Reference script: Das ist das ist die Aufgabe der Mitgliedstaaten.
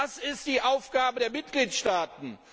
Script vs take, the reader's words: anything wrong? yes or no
yes